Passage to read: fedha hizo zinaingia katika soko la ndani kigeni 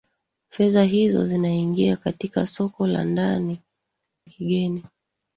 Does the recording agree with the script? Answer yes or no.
yes